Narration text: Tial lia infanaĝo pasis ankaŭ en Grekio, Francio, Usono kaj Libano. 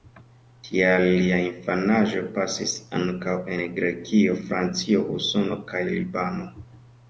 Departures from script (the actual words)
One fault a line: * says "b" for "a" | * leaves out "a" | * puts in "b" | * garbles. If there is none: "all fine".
all fine